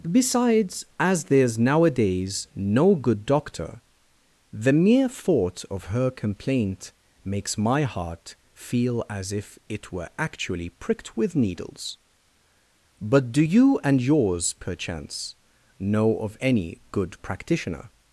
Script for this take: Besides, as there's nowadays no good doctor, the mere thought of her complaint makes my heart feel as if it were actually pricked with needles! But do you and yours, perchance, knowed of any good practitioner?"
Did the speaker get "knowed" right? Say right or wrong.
wrong